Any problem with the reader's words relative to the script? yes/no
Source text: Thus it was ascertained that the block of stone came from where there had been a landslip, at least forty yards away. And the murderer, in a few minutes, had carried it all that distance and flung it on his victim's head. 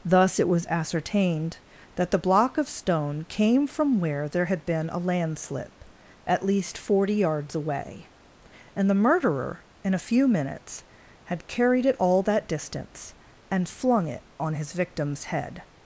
no